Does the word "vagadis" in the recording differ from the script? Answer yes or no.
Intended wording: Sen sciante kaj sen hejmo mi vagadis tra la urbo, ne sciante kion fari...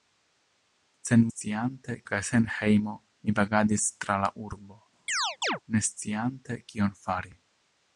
no